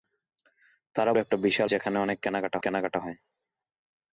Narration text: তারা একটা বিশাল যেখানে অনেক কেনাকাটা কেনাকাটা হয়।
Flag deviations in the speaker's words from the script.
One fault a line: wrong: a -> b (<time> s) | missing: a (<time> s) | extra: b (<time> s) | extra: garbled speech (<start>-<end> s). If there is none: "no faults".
no faults